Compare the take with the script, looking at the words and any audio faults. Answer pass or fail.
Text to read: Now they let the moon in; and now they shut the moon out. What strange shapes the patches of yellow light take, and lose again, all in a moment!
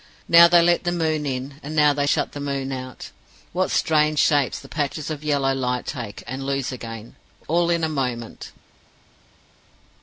pass